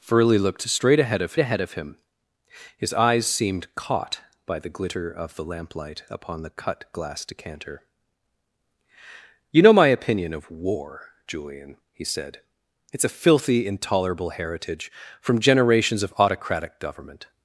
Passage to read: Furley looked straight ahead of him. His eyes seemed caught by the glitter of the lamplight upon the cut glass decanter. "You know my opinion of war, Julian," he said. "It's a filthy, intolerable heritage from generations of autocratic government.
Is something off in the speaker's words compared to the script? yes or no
yes